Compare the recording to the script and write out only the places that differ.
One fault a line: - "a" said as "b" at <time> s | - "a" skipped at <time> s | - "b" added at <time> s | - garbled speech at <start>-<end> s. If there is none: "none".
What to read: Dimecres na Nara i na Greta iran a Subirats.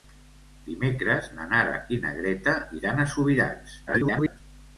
- garbled speech at 3.9-4.4 s